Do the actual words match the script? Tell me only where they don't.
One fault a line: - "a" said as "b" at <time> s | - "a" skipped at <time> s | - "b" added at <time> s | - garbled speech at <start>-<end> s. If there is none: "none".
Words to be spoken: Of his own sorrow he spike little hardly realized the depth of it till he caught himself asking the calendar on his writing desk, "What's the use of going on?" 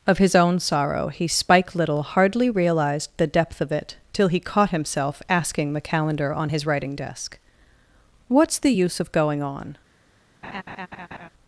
none